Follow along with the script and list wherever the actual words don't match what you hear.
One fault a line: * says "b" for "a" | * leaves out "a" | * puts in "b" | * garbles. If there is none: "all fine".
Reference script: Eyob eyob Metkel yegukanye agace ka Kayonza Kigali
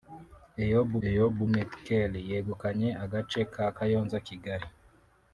all fine